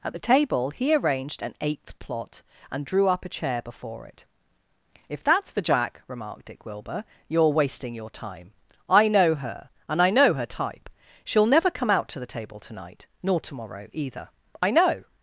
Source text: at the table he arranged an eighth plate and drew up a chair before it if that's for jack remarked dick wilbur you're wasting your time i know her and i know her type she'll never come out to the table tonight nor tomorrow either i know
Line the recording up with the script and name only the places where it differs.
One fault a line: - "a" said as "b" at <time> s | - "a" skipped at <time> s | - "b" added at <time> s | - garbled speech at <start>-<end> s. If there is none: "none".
- "plate" said as "plot" at 2.0 s